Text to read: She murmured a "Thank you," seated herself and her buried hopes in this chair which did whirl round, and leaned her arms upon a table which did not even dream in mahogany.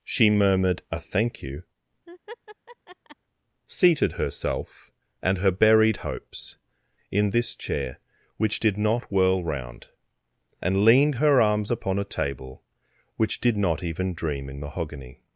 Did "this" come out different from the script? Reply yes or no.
no